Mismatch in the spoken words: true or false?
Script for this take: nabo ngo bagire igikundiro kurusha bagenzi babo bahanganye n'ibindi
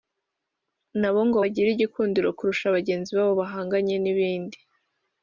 false